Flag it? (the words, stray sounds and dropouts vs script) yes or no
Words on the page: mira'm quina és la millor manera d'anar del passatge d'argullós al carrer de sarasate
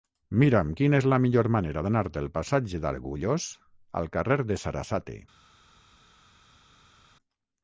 no